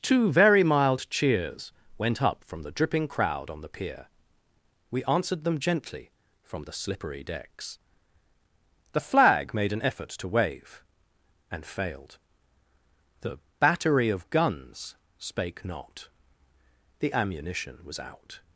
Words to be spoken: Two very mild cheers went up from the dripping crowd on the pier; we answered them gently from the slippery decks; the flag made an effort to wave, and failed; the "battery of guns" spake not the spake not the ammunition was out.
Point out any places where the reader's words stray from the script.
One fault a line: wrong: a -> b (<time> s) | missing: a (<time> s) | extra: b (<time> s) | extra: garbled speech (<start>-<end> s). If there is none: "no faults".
missing: spake not the (17.1 s)